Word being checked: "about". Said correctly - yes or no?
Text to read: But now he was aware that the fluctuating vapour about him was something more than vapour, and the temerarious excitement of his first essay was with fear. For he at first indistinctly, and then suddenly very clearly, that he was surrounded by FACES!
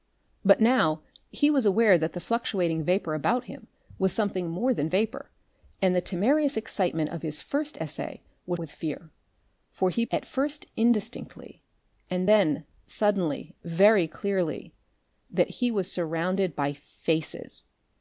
yes